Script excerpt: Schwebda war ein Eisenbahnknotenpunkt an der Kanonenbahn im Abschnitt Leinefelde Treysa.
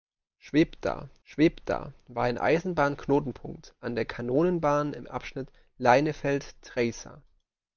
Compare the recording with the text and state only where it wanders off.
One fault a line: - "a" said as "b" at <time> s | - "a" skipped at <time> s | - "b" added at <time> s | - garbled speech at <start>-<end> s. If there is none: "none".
- "schwebda" added at 1.2 s